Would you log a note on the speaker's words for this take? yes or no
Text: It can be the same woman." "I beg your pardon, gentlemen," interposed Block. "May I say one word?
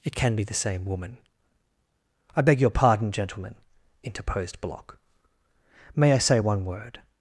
no